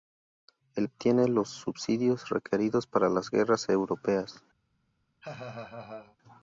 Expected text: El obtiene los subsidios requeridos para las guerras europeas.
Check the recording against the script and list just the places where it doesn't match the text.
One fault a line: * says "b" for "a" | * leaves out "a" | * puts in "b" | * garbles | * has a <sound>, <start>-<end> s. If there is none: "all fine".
* has a laugh, 5.2-6.2 s